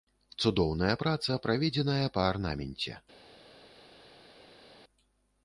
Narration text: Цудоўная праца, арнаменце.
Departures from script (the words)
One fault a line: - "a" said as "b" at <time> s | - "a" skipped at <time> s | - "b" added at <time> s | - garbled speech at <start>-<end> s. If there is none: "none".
- "праведзеная па" added at 1.5 s